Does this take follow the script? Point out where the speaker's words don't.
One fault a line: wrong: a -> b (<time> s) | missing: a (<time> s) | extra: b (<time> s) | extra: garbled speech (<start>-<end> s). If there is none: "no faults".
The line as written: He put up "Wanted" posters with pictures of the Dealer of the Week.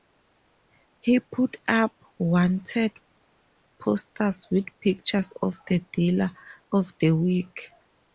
no faults